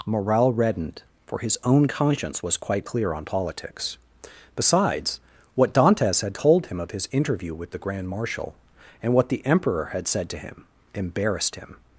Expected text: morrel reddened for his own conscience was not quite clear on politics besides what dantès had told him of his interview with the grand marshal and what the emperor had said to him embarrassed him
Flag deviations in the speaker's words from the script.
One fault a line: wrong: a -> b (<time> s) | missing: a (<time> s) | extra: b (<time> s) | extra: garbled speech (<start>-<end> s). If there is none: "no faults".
missing: not (2.6 s)